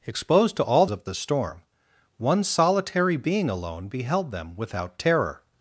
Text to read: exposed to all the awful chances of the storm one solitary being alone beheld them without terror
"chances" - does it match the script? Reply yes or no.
no